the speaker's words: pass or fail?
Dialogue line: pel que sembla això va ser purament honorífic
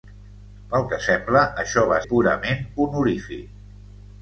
fail